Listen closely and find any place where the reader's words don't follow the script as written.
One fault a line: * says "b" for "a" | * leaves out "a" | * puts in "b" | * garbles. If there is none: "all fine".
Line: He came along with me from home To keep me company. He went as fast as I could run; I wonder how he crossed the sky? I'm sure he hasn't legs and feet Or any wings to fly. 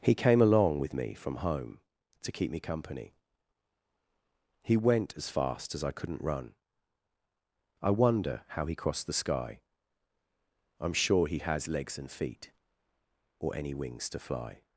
* says "couldn't" for "could"
* says "has" for "hasn't"